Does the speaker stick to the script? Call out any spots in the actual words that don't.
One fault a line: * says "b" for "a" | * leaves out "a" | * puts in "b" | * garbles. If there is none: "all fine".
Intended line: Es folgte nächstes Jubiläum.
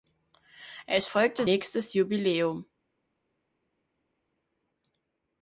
all fine